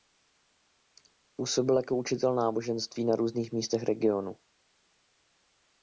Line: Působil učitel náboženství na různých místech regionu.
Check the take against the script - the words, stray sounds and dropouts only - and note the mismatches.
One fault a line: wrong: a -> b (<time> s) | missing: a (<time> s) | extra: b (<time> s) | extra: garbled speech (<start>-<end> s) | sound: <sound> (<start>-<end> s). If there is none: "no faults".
extra: jako (1.8 s)